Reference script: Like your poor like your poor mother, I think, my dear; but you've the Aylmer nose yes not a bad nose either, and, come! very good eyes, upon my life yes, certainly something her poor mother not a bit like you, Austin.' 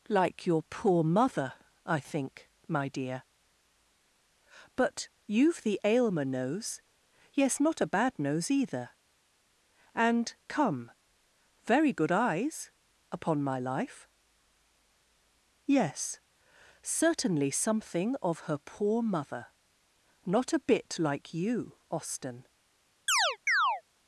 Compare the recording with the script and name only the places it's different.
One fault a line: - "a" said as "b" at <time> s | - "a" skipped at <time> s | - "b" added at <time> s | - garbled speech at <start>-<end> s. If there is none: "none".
- "like your poor" skipped at 1.0 s
- "of" added at 18.2 s